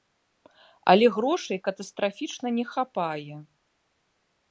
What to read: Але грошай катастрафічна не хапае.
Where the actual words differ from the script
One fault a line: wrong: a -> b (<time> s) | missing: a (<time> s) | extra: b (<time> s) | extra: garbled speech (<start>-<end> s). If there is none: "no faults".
no faults